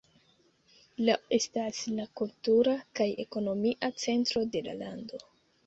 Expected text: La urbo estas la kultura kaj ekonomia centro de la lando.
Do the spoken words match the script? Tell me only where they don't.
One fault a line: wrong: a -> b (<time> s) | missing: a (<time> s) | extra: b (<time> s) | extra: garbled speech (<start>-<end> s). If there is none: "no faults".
missing: urbo (1.1 s)